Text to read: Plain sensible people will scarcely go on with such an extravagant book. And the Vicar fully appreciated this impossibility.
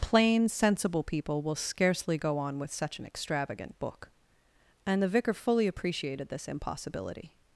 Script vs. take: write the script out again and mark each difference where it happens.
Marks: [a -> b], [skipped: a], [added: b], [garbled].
Plain sensible people will scarcely go on with such an extravagant book. And the Vicar fully appreciated this impossibility.